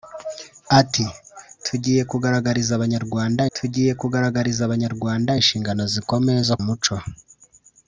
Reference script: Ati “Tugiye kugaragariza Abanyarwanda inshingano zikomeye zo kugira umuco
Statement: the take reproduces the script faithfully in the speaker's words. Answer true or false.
false